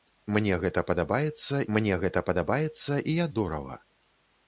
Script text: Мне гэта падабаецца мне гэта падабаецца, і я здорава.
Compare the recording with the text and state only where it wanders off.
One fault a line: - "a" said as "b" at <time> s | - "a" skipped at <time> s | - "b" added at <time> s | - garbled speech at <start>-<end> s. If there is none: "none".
none